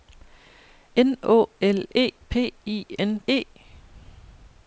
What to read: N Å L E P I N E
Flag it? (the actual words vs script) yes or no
no